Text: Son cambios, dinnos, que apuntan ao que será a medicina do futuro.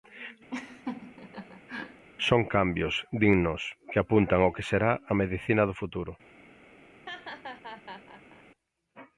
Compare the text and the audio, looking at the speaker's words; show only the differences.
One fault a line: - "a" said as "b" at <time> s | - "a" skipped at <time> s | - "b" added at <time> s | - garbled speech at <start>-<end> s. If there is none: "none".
none